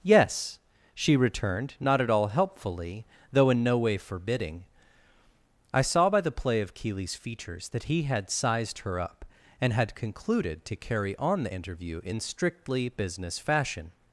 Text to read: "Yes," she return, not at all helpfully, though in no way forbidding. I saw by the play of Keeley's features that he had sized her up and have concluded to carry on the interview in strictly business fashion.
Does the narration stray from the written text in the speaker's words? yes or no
yes